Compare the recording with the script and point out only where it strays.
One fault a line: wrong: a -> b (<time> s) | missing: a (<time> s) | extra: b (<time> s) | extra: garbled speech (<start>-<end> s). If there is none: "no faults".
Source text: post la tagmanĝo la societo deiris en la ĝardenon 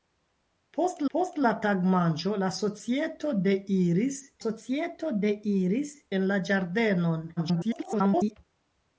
extra: post (1.1 s)
extra: societo deiris (4.4 s)
extra: garbled speech (7.4-8.4 s)